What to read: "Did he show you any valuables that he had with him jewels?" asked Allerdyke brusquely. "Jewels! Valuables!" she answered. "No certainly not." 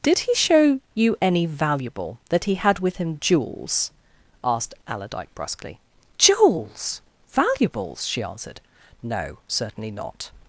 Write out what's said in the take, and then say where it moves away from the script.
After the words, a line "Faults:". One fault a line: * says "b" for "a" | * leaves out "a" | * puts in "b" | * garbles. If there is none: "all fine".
"Did he show you any valuable that he had with him jewels?" asked Allerdyke brusquely. "Jewels! Valuables!" she answered. "No certainly not."
Faults:
* says "valuable" for "valuables"